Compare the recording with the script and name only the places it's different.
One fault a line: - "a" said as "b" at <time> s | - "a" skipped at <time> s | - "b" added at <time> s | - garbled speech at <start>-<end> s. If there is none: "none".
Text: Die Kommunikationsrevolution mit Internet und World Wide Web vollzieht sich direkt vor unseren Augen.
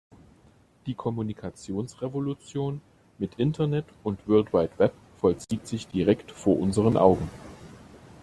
none